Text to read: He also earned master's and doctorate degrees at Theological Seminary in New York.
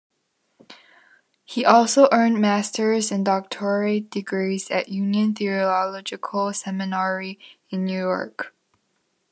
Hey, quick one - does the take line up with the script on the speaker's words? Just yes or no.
no